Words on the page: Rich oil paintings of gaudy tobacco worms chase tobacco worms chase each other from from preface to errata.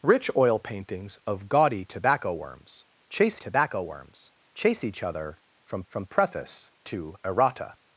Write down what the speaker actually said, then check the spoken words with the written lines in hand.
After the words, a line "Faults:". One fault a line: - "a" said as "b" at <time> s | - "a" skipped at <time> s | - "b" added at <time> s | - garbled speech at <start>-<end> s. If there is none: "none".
Rich oil paintings of gaudy tobacco worms chase tobacco worms chase each other from from preface to errata.
Faults:
none